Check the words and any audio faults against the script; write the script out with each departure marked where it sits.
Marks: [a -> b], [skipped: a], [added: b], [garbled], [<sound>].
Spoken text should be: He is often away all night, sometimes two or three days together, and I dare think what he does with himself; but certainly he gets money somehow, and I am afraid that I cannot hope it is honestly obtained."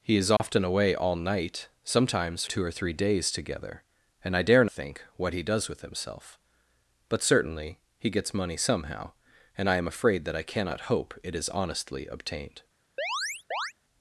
He is often [dropout] away all night, sometimes two or three days together, and I dare think what he does with himself; but certainly he gets money somehow, and I am afraid that I cannot hope it is honestly obtained." [chirp]